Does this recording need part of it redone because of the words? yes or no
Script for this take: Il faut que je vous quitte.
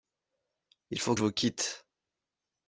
yes